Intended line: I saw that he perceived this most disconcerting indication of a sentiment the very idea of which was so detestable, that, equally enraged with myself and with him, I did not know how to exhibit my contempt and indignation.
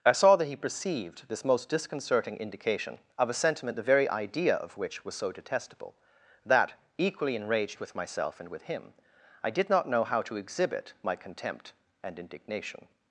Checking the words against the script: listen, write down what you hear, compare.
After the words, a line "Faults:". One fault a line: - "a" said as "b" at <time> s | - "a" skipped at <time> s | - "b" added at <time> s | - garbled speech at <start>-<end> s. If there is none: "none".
I saw that he perceived this most disconcerting indication of a sentiment the very idea of which was so detestable, that, equally enraged with myself and with him, I did not know how to exhibit my contempt and indignation.
Faults:
none